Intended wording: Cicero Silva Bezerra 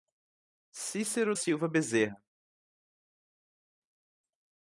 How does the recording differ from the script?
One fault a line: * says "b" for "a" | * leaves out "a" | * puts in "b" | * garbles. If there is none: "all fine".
all fine